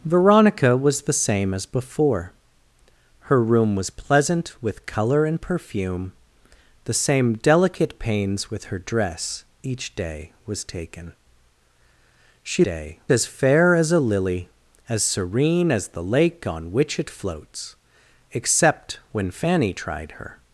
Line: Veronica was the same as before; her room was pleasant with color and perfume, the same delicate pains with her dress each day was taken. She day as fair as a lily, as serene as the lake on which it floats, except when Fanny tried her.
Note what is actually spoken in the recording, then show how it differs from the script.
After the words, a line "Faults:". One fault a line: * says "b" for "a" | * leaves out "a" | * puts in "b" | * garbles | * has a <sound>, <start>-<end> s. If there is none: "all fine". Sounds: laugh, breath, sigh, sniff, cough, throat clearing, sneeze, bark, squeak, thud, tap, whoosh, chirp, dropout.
Veronica was the same as before; her room was pleasant with color and perfume, the same delicate pains with her dress each day was taken. She day as fair as a lily, as serene as the lake on which it floats, except when Fanny tried her.
Faults:
all fine